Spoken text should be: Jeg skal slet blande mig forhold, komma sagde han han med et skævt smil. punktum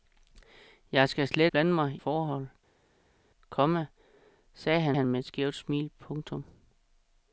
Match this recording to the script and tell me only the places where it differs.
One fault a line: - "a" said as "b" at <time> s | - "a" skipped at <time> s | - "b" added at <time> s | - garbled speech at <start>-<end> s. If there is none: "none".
none